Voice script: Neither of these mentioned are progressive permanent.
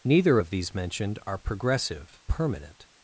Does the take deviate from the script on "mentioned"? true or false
false